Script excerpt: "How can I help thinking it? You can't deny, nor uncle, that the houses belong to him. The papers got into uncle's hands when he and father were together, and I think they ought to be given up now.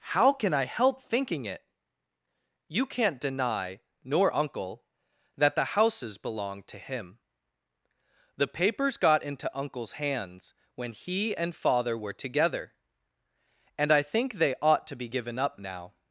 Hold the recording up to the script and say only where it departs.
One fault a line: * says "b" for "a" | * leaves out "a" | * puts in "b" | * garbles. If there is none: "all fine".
all fine